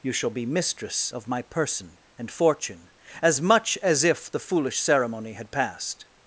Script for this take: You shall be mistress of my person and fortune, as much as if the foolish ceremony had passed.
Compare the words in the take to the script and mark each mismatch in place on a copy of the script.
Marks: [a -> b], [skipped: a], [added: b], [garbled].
You shall be mistress of my person and fortune, as much as if the foolish ceremony had passed.